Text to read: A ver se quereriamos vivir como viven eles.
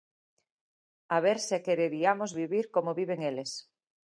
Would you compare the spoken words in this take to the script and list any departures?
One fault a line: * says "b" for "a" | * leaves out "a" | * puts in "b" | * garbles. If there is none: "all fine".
all fine